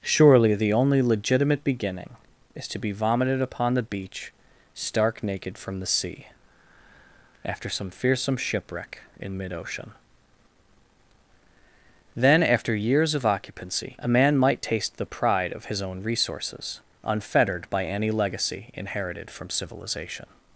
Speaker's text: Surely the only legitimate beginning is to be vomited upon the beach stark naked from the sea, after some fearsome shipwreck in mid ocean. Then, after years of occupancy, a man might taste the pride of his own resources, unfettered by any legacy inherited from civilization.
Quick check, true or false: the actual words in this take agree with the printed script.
true